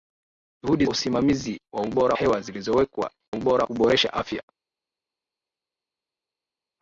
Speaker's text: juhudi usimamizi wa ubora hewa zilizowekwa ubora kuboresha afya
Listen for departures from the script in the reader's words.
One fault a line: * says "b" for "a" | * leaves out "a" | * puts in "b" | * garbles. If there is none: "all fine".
all fine